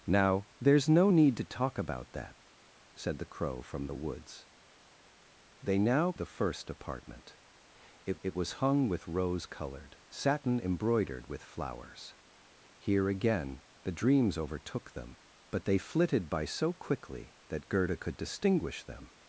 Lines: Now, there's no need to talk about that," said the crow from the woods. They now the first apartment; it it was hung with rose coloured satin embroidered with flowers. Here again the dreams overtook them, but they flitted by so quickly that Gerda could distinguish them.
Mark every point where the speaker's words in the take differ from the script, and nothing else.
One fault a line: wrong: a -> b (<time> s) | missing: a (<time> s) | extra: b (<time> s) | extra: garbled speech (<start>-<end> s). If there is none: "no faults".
no faults